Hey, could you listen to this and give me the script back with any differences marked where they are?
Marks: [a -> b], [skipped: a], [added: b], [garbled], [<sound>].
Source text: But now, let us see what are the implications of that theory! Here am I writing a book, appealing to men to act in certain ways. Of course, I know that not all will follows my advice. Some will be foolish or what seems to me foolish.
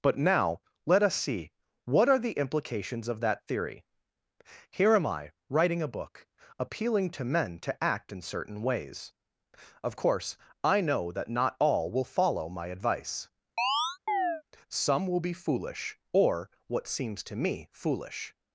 But now, let us see what are the implications of that theory! Here am I writing a book, appealing to men to act in certain ways. Of course, I know that not all will [follows -> follow] my advice. [chirp] Some will be foolish or what seems to me foolish.